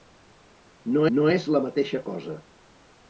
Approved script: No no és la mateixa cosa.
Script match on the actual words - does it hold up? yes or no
yes